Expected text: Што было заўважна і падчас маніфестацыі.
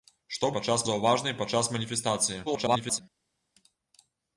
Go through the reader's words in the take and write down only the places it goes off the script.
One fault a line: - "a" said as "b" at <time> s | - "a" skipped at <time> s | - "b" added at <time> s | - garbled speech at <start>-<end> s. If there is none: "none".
- "было" said as "падчас" at 0.5 s
- garbled speech at 2.5-3.0 s